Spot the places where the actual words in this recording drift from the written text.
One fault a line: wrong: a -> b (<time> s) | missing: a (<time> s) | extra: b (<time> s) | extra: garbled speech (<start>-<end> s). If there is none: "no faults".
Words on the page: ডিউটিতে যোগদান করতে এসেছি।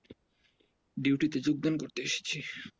no faults